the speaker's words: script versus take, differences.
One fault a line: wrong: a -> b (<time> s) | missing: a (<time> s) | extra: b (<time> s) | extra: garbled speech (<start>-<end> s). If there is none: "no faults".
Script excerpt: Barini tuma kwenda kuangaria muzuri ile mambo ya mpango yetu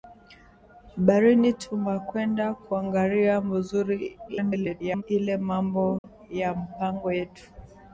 extra: garbled speech (4.3-5.0 s)